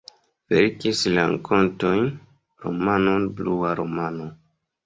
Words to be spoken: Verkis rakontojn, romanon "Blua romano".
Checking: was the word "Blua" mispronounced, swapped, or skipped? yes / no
no